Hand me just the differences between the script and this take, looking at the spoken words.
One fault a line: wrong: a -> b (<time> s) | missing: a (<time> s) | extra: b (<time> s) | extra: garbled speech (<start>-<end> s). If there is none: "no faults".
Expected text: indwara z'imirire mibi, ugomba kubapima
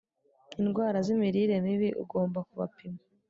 no faults